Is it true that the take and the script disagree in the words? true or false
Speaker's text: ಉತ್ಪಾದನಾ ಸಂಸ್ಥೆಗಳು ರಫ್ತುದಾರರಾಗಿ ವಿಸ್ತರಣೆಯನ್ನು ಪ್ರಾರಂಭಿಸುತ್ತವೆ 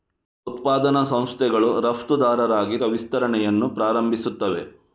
false